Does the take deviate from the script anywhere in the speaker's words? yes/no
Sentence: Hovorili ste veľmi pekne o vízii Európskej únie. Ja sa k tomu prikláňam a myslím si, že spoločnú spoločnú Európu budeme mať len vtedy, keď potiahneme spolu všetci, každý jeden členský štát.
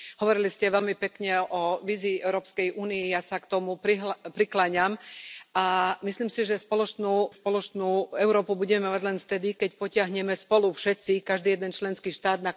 no